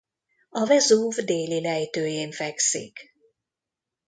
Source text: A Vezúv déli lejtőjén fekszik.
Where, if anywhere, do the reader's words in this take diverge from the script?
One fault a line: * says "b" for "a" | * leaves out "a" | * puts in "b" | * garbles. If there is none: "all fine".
all fine